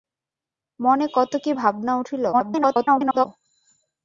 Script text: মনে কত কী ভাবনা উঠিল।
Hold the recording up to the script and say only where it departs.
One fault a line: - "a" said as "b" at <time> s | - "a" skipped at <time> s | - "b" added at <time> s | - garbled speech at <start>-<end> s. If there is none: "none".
- garbled speech at 2.3-3.3 s